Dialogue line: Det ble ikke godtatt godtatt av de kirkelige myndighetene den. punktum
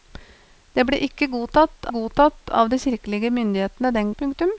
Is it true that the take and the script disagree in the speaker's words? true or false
false